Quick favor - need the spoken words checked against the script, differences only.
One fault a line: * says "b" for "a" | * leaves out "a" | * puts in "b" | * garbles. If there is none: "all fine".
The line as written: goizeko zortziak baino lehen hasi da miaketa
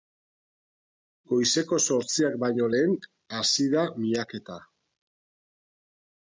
all fine